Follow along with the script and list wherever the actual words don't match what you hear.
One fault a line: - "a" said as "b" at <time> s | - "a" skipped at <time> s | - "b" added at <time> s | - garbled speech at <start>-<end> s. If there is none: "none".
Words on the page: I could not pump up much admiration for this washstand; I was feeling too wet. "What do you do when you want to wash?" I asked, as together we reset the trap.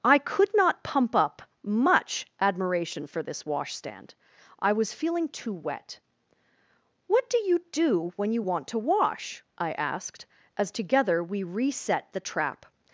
none